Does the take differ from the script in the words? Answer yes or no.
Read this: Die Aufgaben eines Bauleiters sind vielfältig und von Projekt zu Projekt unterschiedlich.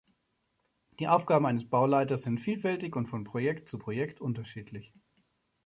no